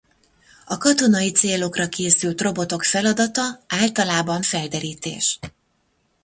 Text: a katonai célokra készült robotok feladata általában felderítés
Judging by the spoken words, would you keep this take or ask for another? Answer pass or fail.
pass